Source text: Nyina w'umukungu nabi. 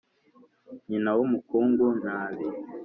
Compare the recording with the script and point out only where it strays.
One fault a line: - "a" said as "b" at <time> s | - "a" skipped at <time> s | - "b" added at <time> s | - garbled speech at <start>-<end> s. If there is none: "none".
none